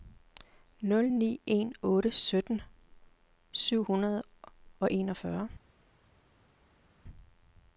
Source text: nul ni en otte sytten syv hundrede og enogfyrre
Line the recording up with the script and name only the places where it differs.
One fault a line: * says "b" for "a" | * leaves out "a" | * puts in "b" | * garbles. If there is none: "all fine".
all fine